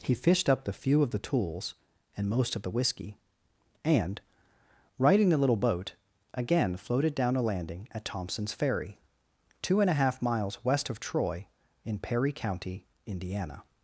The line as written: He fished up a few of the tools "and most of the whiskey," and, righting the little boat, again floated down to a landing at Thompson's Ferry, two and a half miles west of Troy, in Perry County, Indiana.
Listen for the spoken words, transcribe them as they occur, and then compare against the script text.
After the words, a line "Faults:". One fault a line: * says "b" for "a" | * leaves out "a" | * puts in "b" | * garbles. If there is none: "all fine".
He fished up the few of the tools "and most of the whiskey," and, righting the little boat, again floated down a landing at Thompson's Ferry, two and a half miles west of Troy, in Perry County, Indiana.
Faults:
* says "the" for "a"
* leaves out "to"